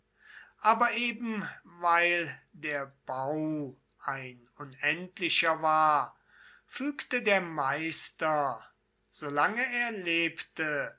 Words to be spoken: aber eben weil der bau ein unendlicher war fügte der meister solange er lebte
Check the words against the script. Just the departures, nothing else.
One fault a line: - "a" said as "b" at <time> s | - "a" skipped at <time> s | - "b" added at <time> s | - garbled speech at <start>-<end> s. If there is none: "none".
none